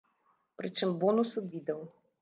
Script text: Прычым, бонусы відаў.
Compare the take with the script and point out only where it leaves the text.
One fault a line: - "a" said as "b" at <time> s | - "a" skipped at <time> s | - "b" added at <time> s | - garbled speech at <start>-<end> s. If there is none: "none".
none